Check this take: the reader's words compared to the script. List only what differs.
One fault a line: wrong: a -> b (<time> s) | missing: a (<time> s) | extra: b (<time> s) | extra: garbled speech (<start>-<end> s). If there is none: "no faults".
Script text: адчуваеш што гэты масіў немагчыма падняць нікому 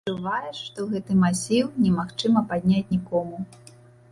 no faults